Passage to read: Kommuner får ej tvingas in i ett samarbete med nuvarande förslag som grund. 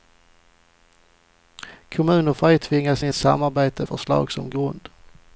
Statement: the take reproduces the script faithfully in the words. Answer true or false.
false